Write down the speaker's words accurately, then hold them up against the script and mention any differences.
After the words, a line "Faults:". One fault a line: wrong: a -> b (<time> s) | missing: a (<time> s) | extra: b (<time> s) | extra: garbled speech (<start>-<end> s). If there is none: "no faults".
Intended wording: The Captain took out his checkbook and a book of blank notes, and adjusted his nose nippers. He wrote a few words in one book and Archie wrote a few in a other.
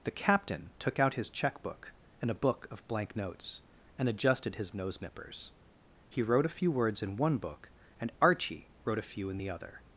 The Captain took out his checkbook and a book of blank notes, and adjusted his nose nippers. He wrote a few words in one book and Archie wrote a few in the other.
Faults:
wrong: a -> the (9.4 s)